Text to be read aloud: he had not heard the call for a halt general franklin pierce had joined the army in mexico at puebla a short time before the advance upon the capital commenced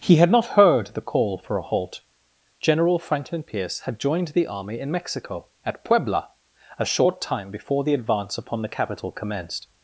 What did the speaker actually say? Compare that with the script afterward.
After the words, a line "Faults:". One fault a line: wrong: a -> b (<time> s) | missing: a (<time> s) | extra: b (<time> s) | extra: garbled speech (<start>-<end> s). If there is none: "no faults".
he had not heard the call for a halt general franklin pierce had joined the army in mexico at puebla a short time before the advance upon the capital commenced
Faults:
no faults